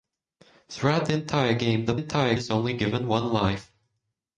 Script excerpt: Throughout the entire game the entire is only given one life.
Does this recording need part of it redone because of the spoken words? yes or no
no